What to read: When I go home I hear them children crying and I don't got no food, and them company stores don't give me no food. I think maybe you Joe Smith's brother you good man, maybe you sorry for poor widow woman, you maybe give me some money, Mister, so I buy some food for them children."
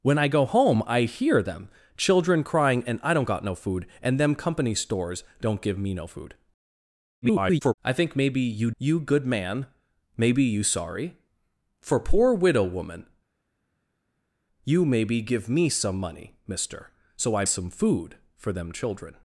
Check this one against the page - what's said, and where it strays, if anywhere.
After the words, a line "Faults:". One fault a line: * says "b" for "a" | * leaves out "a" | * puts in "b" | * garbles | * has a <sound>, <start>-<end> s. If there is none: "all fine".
When I go home I hear them children crying and I don't got no food, and them company stores don't give me no food. [garbled] I think maybe you You good man, maybe you sorry for poor widow woman, you maybe give me some money, Mister, so I some food for them children."
Faults:
* garbles
* leaves out "Joe Smith's brother"
* leaves out "buy"